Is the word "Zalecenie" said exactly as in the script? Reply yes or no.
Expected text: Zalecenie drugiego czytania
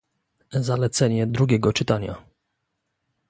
yes